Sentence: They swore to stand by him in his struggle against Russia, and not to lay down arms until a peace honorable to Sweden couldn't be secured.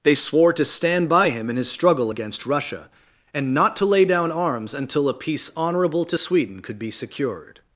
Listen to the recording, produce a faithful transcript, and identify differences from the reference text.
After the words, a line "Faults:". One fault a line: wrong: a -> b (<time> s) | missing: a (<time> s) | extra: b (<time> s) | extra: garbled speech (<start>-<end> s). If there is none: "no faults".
They swore to stand by him in his struggle against Russia, and not to lay down arms until a peace honorable to Sweden could be secured.
Faults:
wrong: couldn't -> could (6.6 s)